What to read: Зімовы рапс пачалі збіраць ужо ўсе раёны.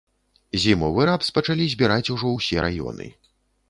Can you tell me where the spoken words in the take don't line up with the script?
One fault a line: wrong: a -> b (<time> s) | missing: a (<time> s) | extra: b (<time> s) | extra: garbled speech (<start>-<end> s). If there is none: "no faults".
no faults